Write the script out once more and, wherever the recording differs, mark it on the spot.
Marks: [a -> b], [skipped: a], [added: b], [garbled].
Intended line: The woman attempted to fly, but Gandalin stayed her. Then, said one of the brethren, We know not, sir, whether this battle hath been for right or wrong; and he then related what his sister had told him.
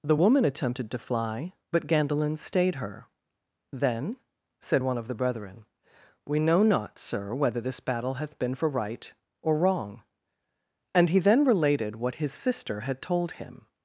The woman attempted to fly, but Gandalin stayed her. Then, said one of the brethren, We know not, sir, whether this battle hath been for right or wrong; and he then related what his sister had told him.